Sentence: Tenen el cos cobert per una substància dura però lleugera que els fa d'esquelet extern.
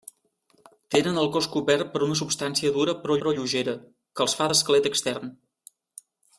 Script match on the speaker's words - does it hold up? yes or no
no